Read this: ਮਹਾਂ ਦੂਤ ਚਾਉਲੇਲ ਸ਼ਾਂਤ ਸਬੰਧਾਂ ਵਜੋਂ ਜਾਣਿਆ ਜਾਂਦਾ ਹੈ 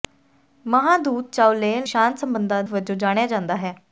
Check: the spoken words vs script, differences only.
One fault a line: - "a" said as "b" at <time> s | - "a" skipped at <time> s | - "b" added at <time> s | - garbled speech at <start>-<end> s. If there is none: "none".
none